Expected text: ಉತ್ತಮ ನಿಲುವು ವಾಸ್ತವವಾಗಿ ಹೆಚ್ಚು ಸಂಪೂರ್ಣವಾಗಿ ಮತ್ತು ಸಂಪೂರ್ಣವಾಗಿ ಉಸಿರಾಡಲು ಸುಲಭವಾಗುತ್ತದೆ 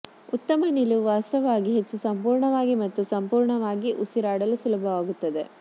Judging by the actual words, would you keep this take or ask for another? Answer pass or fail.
pass